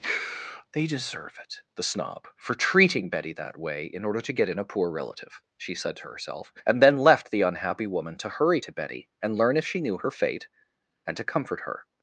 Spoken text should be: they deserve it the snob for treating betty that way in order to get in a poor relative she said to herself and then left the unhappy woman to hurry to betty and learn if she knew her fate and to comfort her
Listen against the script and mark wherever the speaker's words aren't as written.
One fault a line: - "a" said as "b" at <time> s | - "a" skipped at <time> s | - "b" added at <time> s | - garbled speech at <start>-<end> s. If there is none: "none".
none